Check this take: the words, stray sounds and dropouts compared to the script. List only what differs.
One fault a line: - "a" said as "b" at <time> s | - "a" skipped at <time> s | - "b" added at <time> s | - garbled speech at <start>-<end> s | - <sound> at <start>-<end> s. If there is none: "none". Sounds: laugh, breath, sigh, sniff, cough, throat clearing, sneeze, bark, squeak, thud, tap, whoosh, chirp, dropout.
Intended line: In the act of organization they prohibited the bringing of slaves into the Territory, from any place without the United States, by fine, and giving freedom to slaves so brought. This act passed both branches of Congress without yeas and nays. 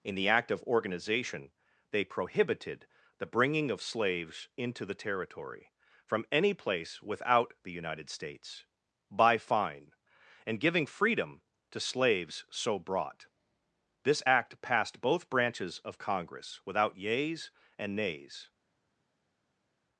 none